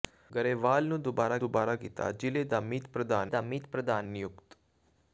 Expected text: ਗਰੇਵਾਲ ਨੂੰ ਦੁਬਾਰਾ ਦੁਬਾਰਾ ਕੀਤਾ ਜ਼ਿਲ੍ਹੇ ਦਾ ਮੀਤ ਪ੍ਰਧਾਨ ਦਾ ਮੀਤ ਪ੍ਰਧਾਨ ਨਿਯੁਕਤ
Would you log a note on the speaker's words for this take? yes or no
no